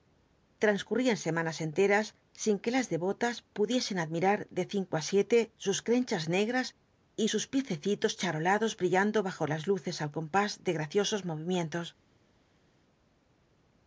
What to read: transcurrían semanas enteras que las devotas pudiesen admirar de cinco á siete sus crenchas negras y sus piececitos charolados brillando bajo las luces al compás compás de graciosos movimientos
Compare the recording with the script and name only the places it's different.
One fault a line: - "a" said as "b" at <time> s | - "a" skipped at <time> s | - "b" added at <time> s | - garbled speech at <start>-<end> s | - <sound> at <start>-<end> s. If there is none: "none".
- "sin" added at 2.4 s
- "compás" skipped at 10.5 s